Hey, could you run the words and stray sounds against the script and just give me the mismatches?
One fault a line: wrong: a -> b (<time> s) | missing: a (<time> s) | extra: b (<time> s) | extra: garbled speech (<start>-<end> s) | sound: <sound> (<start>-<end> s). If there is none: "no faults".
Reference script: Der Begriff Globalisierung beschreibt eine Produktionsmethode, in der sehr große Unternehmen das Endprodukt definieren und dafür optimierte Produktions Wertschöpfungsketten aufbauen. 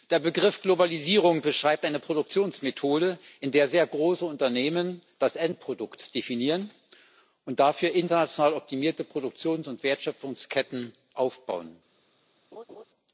extra: international (7.9 s)
extra: und (9.7 s)
sound: laugh (12.5-12.8 s)